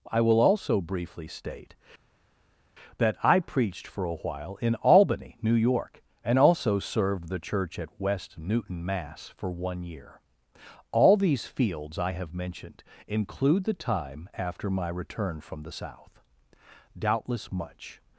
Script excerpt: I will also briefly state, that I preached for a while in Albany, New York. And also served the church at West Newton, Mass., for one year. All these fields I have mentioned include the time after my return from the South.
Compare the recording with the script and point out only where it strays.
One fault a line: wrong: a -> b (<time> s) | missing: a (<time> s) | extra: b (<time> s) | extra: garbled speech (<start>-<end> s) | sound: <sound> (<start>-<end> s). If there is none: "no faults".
extra: Doubtless much (17.0 s)